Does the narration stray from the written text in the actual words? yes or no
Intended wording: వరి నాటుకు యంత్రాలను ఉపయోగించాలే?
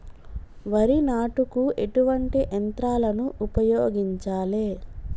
yes